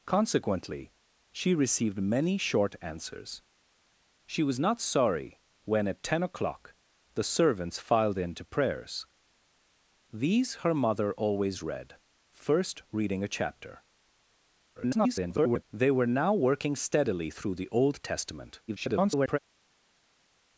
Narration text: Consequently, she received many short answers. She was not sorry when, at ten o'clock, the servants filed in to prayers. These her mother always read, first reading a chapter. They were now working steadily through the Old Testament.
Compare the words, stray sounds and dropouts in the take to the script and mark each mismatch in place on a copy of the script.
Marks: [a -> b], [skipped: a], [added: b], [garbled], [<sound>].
Consequently, she received many short answers. She was not sorry when, at ten o'clock, the servants filed in to prayers. These her mother always read, first reading a chapter. [garbled] They were now working steadily through the Old Testament. [garbled]